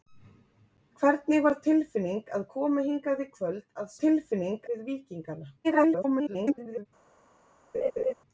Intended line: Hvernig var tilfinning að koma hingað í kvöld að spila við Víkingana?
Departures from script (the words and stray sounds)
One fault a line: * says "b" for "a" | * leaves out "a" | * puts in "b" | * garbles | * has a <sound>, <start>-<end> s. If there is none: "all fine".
* says "tilfinning" for "spila"
* garbles
* has a laugh, 7.7-8.1 s